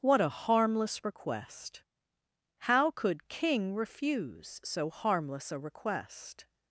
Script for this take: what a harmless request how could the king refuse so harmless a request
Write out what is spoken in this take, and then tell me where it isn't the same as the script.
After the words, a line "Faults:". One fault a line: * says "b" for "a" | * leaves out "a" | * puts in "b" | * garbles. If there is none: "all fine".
what a harmless request how could king refuse so harmless a request
Faults:
* leaves out "the"